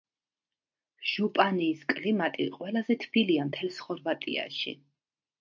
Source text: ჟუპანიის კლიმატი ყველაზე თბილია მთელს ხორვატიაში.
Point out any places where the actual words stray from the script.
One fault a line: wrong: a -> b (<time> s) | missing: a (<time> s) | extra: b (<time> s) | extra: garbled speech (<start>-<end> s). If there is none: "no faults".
no faults